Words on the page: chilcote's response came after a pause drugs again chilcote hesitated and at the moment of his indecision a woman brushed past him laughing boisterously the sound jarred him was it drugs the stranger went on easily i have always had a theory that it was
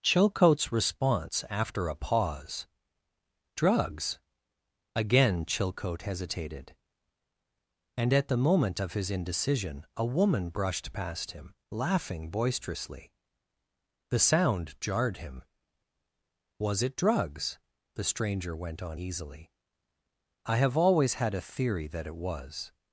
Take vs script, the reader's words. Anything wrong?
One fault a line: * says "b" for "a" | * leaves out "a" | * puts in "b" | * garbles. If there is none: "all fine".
* leaves out "came"